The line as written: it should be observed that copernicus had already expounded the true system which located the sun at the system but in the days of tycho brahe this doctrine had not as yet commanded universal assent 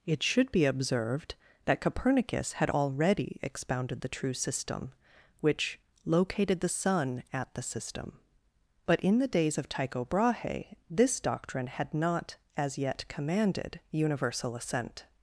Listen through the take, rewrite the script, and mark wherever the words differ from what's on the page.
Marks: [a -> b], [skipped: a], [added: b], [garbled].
it should be observed that copernicus had already expounded the true system which located the sun at the system but in the days of tycho brahe this doctrine had not as yet commanded universal assent